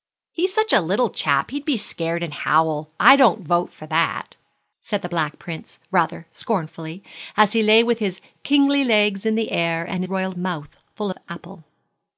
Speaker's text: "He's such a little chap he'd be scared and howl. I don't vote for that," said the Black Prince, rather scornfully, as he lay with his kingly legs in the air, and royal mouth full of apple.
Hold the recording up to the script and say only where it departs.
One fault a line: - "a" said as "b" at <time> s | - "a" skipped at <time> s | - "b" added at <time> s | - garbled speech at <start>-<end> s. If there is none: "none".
none